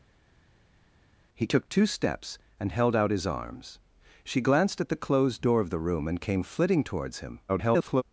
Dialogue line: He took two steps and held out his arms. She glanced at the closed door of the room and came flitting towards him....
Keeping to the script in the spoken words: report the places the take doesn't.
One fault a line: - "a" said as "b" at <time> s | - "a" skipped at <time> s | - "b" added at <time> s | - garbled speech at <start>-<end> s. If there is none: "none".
- garbled speech at 7.5-8.0 s